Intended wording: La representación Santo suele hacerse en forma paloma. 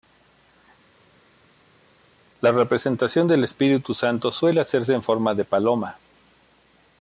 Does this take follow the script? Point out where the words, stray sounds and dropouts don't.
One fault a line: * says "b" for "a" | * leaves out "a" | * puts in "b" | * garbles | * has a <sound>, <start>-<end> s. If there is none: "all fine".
* puts in "del Espíritu"
* puts in "de"